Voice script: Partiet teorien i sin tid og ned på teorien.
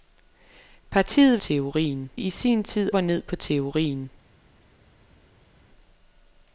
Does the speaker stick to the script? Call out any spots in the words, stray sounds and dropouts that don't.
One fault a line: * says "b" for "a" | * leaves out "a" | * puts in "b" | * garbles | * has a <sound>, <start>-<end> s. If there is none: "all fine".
all fine